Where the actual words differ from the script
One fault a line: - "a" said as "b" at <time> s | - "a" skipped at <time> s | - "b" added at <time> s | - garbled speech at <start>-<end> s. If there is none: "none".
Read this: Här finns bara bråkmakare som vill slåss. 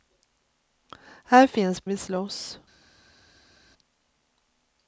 - "bara bråkmakare som" skipped at 1.9 s